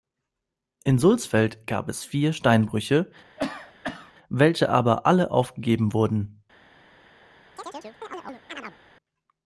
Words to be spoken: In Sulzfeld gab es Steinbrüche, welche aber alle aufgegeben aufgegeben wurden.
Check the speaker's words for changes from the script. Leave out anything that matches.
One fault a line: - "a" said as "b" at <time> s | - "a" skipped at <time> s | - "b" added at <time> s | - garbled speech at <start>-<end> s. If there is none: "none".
- "vier" added at 2.0 s
- "aufgegeben" skipped at 5.9 s